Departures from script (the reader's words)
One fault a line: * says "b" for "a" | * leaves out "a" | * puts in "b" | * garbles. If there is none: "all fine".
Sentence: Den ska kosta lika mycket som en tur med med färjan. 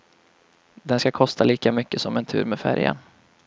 * leaves out "med"